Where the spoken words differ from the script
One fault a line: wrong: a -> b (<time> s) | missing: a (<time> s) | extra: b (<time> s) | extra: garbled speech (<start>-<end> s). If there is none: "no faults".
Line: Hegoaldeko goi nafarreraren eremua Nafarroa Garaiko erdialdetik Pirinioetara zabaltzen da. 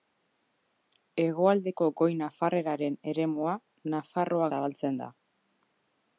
missing: Garaiko erdialdetik Pirinioetara (4.5 s)